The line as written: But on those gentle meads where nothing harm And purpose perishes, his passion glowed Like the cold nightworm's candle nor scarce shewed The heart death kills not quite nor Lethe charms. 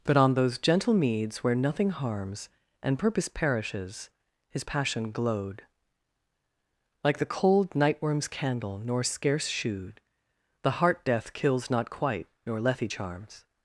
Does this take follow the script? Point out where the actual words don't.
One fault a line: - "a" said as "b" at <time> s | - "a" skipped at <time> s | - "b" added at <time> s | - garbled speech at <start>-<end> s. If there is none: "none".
- "harm" said as "harms" at 1.9 s